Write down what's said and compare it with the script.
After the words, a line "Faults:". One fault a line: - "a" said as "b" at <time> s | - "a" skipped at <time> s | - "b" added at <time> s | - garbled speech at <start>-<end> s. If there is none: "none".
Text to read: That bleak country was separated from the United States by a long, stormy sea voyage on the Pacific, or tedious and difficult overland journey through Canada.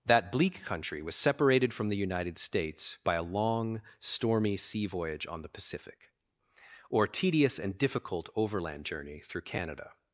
That bleak country was separated from the United States by a long, stormy sea voyage on the Pacific, or tedious and difficult overland journey through Canada.
Faults:
none